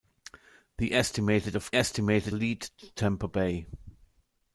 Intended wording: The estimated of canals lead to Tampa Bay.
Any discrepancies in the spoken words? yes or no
yes